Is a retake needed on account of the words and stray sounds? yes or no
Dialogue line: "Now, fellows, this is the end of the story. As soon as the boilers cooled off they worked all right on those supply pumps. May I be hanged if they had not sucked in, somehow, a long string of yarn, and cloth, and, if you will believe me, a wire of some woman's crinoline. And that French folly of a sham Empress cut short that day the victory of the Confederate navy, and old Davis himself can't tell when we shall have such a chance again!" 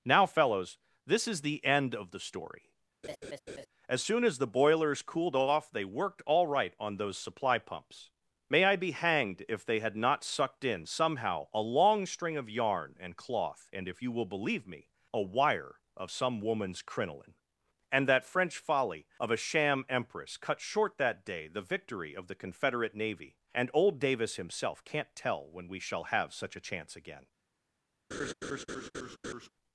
yes